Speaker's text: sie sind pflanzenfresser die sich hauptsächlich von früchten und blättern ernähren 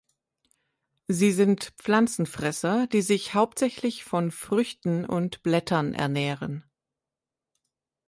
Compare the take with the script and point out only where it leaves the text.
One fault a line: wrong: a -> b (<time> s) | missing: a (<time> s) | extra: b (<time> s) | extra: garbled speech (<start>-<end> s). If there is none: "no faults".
no faults